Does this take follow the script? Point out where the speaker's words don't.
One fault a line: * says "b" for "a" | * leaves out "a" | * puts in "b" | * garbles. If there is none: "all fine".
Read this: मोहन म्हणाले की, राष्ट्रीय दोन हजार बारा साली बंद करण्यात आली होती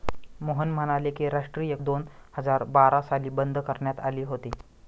all fine